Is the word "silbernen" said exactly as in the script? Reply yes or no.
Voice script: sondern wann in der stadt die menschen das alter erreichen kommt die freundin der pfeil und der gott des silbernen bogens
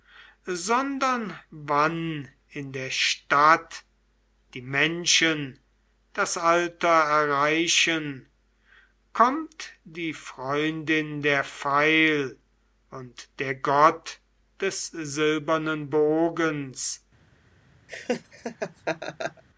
yes